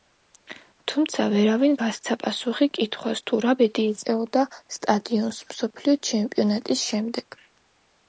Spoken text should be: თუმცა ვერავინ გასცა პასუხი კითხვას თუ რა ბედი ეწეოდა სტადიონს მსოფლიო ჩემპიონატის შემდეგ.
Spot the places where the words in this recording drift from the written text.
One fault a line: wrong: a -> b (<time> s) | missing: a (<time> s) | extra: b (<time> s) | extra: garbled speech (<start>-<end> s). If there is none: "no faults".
no faults